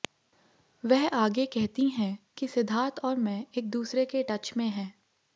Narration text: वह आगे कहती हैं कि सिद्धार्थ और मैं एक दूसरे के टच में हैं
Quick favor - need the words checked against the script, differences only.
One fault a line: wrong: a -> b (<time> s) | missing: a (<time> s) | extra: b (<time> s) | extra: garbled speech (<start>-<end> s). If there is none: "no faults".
no faults